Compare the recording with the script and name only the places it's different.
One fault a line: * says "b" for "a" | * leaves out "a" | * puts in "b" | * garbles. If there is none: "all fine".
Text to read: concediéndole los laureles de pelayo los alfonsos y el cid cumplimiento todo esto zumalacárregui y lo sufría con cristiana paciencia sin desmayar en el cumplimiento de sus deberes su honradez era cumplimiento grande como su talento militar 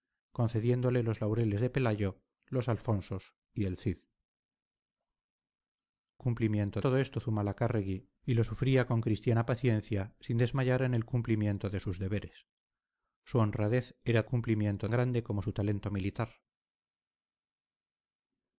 all fine